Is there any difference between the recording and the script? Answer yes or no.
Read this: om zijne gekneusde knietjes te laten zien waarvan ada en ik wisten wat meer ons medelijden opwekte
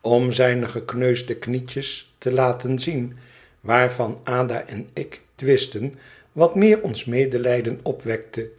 no